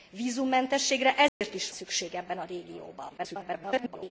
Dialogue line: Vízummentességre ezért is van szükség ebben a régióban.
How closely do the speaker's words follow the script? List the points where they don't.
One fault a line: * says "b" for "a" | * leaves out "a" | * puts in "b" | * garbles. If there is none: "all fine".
* leaves out "van"
* garbles